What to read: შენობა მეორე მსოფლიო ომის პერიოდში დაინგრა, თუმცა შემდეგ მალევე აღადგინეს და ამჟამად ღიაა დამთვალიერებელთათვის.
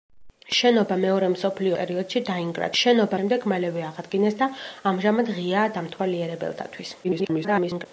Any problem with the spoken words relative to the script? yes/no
yes